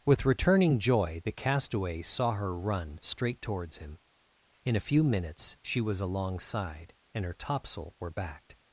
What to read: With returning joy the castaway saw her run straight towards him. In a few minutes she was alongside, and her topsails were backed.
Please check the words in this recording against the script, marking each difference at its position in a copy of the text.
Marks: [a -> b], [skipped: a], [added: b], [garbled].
With returning joy the castaway saw her run straight towards him. In a few minutes she was alongside, and her [topsails -> topsail] were backed.